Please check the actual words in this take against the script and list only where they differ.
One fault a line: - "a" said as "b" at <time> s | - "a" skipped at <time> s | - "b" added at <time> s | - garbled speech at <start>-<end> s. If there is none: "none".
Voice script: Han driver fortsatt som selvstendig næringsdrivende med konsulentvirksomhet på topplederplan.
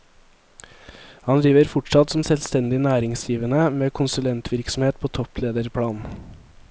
none